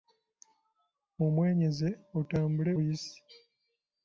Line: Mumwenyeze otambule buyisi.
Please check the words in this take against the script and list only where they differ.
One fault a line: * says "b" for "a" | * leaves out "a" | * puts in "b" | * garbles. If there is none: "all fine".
all fine